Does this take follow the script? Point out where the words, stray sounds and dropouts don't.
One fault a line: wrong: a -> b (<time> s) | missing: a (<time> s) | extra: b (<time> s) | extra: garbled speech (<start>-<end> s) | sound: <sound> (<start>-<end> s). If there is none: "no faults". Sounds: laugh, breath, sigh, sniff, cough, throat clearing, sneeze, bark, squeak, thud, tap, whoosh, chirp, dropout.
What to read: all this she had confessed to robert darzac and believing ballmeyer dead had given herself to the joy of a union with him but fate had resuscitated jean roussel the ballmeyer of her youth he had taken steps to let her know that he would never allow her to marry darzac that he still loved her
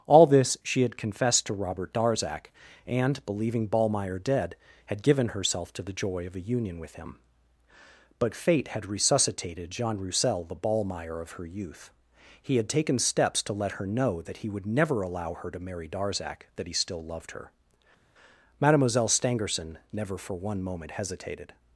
extra: mademoiselle stangerson never for one moment hesitated (18.6 s)